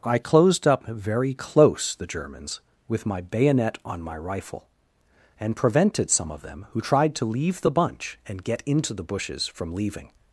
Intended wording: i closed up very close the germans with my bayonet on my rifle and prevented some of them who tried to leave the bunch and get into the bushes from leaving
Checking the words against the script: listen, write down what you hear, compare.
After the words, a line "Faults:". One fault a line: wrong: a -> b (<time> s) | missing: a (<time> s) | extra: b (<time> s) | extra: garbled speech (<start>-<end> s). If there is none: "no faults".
i closed up very close the germans with my bayonet on my rifle and prevented some of them who tried to leave the bunch and get into the bushes from leaving
Faults:
no faults